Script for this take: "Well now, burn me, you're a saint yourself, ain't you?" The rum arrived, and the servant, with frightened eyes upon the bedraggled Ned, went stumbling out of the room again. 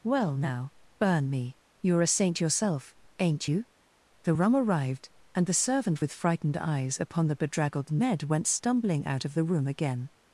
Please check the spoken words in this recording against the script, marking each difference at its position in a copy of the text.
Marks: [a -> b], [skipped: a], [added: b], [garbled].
"Well now, burn me, you're a saint yourself, ain't you?" The rum arrived, and the servant, with frightened eyes upon the bedraggled Ned, went stumbling out of the room again.